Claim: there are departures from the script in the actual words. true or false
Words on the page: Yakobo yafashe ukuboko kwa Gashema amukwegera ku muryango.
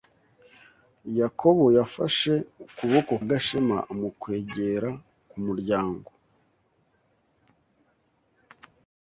true